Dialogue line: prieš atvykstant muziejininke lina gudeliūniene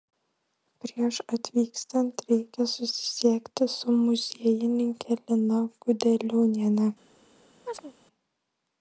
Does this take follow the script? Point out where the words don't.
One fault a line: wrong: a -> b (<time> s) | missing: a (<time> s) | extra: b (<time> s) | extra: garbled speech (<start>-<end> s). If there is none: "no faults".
extra: reikia susisiekti su (2.3 s)